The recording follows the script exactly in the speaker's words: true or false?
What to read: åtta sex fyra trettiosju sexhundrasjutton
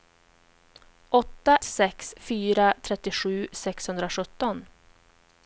true